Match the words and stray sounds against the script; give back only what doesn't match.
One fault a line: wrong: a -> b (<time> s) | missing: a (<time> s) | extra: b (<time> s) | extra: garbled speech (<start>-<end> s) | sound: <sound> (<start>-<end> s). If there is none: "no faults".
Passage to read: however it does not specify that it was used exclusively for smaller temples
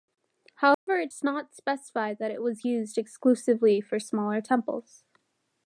sound: dropout (0.7-0.9 s)